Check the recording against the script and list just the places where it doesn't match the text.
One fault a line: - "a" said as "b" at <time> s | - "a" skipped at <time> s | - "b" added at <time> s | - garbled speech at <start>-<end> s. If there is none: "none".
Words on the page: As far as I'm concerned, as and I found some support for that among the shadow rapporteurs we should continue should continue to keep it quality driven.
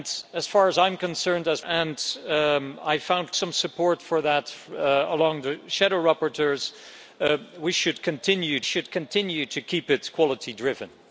none